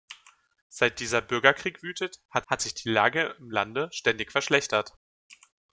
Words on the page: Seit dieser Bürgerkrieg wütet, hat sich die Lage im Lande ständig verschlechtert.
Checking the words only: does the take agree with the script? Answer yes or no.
no